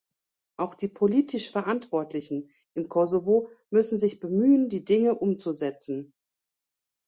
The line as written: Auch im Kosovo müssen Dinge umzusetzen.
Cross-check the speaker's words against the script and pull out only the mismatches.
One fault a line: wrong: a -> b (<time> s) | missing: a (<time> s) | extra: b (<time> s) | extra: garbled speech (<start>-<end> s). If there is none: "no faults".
extra: die politisch Verantwortlichen (0.7 s)
extra: sich bemühen die (4.0 s)